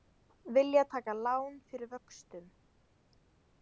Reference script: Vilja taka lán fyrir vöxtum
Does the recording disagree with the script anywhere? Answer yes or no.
no